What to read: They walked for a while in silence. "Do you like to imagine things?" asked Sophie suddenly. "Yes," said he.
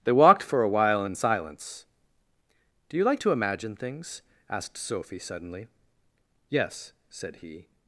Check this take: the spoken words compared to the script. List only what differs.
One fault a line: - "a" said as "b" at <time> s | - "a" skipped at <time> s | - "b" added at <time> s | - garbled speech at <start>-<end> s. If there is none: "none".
none